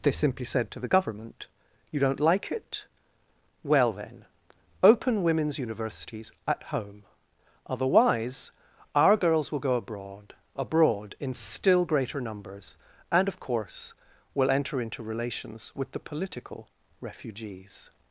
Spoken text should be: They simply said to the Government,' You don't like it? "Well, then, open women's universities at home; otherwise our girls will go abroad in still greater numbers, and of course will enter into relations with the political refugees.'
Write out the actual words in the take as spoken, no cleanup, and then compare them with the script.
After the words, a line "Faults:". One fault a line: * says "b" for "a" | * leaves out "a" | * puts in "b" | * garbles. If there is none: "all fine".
They simply said to the Government,' You don't like it? "Well, then, open women's universities at home; otherwise our girls will go abroad abroad in still greater numbers, and of course will enter into relations with the political refugees.'
Faults:
* puts in "abroad"